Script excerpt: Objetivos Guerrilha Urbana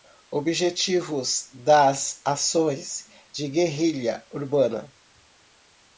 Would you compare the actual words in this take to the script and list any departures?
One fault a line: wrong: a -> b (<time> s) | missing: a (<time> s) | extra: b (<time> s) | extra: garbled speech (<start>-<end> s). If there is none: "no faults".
extra: das Ações de (1.5 s)